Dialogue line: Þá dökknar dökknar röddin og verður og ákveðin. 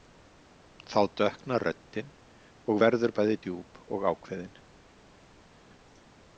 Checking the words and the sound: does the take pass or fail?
fail